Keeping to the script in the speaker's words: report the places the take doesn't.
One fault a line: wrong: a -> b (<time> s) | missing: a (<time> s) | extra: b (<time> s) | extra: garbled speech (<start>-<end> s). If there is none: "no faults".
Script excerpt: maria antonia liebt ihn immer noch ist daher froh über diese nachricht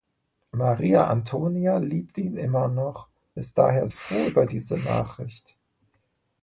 no faults